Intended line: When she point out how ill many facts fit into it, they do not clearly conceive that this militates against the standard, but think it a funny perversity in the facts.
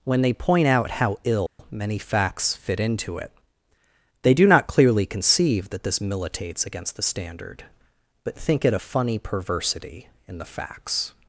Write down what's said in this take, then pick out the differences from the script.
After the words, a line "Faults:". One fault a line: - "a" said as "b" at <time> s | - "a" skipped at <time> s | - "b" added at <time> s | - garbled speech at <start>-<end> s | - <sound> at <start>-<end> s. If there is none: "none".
When they point out how ill many facts fit into it, they do not clearly conceive that this militates against the standard, but think it a funny perversity in the facts.
Faults:
- "she" said as "they" at 0.2 s
- dropout at 1.5-1.6 s